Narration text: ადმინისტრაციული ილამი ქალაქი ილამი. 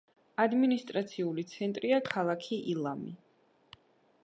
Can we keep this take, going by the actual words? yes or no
no